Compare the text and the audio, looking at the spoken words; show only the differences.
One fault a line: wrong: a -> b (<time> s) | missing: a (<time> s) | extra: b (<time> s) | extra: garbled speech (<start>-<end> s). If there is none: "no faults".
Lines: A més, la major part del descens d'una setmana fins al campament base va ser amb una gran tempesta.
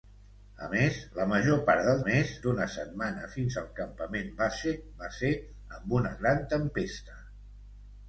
wrong: descens -> més (2.0 s)